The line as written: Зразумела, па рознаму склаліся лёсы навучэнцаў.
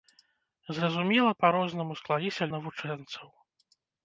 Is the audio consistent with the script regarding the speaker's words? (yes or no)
no